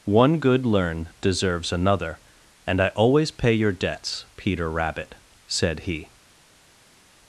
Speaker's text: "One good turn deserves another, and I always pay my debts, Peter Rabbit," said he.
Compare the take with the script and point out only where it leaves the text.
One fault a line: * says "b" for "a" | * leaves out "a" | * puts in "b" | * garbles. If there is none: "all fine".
* says "learn" for "turn"
* says "your" for "my"